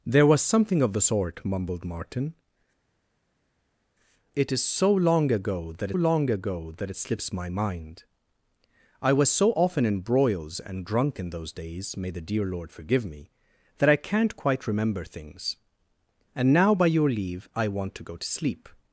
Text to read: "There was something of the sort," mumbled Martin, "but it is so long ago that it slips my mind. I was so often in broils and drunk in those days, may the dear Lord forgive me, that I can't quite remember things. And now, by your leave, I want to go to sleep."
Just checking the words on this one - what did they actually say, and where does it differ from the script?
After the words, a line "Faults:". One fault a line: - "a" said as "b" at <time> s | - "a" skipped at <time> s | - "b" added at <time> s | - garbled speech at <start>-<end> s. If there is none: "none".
"There was something of the sort," mumbled Martin, "it is so long ago that long ago that it slips my mind. I was so often in broils and drunk in those days, may the dear Lord forgive me, that I can't quite remember things. And now, by your leave, I want to go to sleep."
Faults:
- "but" skipped at 2.3 s
- "long ago that" added at 5.9 s